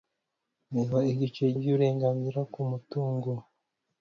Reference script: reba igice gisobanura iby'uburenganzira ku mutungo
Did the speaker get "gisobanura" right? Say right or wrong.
wrong